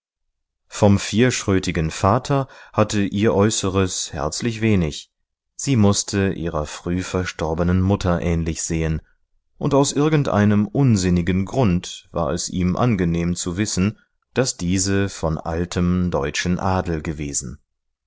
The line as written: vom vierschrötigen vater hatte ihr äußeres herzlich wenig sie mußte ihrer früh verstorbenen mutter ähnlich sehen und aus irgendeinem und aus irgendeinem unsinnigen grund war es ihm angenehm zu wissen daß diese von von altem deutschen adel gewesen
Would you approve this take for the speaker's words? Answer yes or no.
no